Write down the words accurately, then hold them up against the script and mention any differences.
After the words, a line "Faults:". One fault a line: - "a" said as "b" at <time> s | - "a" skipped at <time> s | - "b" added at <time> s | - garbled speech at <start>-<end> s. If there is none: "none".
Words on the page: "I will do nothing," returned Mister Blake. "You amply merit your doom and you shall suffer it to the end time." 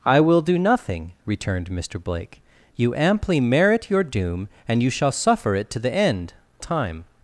"I will do nothing," returned Mister Blake. "You amply merit your doom and you shall suffer it to the end time."
Faults:
none